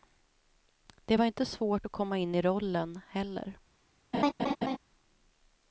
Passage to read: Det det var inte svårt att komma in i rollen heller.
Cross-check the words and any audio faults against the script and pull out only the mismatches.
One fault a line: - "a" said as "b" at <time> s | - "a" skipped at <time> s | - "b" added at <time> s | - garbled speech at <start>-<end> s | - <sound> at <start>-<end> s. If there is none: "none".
- "det" skipped at 1.2 s
- laugh at 4.1-4.8 s